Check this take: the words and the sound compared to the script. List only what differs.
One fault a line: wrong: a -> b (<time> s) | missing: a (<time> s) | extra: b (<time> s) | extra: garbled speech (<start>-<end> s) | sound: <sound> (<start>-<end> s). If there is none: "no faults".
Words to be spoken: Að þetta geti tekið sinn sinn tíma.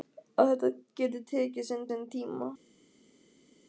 no faults